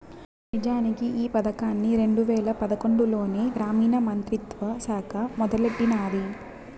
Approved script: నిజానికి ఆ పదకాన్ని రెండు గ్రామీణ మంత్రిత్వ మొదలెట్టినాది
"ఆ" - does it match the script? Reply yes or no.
no